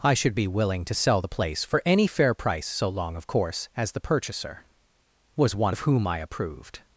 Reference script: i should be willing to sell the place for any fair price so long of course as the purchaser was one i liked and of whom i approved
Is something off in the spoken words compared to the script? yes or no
yes